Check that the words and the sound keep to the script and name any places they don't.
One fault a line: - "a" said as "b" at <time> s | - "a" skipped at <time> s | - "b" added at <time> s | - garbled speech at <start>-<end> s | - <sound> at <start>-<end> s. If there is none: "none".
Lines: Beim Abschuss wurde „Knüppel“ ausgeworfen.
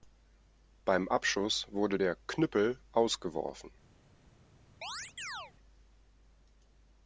- "der" added at 1.9 s
- chirp at 4.8-5.5 s